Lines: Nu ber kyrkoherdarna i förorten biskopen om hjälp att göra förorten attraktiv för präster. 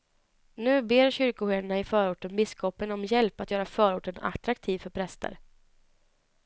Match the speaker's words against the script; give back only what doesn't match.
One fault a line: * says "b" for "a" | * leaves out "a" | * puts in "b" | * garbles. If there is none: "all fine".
all fine